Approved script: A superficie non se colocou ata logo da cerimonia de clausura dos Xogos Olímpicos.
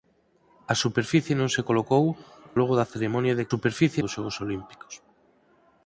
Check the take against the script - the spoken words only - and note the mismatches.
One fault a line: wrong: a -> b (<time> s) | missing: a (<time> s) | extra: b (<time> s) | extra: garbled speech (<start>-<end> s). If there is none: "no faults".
missing: ata (2.0 s)
wrong: clausura -> superficie (3.5 s)